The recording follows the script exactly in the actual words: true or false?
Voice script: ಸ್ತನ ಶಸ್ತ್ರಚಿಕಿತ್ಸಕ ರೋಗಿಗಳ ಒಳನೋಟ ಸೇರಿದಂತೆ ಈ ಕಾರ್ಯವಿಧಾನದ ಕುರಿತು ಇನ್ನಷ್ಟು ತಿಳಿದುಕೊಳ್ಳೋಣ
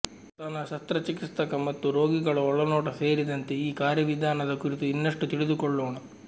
false